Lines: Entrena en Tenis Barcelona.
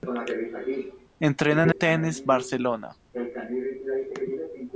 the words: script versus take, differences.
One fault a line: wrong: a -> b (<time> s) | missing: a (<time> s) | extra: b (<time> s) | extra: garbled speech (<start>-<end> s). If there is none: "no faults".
no faults